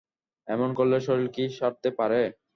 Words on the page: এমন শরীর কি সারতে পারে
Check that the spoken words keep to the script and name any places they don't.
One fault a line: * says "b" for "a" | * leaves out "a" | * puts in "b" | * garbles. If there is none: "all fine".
* puts in "করলে"